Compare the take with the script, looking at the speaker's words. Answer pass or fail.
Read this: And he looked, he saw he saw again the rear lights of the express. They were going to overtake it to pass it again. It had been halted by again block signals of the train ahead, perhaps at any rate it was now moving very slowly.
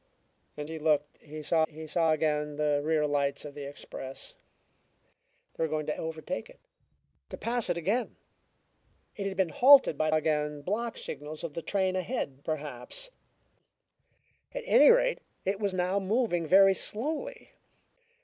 pass